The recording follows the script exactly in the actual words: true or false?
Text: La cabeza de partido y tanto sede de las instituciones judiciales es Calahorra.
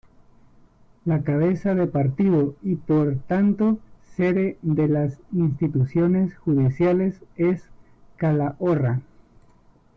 false